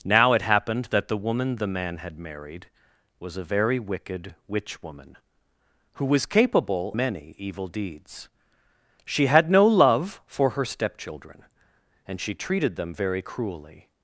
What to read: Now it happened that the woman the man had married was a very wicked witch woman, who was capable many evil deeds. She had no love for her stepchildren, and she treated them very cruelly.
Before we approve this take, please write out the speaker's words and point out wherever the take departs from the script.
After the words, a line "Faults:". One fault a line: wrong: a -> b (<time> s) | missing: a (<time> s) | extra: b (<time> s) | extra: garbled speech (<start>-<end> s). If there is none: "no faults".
Now it happened that the woman the man had married was a very wicked witch woman, who was capable many evil deeds. She had no love for her stepchildren, and she treated them very cruelly.
Faults:
no faults